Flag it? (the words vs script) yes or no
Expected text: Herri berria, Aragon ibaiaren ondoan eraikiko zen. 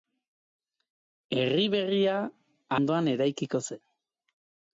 yes